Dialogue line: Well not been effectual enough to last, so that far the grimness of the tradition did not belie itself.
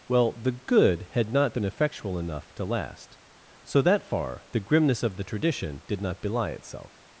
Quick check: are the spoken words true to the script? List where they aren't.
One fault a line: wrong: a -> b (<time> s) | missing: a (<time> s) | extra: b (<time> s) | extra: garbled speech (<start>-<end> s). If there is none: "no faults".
extra: the good had (0.3 s)